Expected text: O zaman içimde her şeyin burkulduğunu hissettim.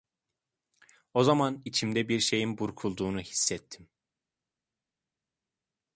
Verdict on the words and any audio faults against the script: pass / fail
fail